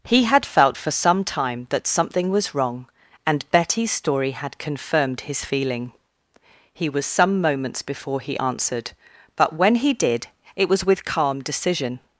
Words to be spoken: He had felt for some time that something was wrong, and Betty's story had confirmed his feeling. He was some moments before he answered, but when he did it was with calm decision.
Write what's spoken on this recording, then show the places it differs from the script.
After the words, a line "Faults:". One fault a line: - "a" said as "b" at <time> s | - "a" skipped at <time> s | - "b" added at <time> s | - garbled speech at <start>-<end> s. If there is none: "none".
He had felt for some time that something was wrong, and Betty's story had confirmed his feeling. He was some moments before he answered, but when he did it was with calm decision.
Faults:
none